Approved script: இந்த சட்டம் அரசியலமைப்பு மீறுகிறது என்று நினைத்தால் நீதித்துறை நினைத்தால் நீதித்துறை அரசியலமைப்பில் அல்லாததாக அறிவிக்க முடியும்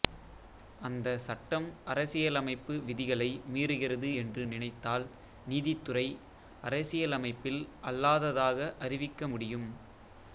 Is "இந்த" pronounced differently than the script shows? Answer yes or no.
yes